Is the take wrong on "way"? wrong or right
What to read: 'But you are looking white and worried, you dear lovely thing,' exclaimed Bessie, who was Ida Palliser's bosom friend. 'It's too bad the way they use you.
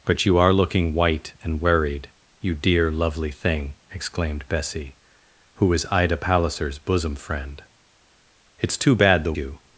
wrong